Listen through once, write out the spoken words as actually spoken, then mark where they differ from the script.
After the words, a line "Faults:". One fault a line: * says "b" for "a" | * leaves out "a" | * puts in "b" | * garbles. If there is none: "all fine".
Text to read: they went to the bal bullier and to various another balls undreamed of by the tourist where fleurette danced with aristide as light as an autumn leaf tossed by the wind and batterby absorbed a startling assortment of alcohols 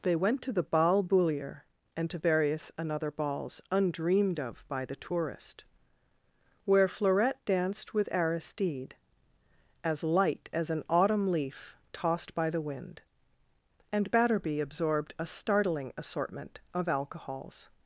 they went to the bal bullier and to various another balls undreamed of by the tourist where fleurette danced with aristide as light as an autumn leaf tossed by the wind and batterby absorbed a startling assortment of alcohols
Faults:
all fine